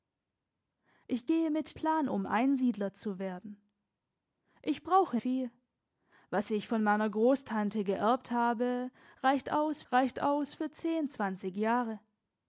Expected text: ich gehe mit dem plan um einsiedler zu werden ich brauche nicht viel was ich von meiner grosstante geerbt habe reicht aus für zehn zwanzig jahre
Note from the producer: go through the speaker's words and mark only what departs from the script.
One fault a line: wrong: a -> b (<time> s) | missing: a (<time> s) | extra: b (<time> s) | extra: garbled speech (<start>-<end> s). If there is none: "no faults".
missing: dem (1.8 s)
missing: nicht (5.2 s)
extra: reicht aus (9.9 s)